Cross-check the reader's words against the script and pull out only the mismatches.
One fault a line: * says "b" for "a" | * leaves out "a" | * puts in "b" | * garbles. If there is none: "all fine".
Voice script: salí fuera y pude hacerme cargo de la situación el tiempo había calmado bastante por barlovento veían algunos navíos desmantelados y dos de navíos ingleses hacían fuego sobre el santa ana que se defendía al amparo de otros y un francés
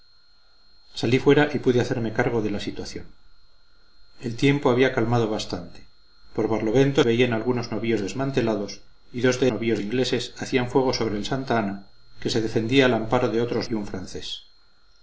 all fine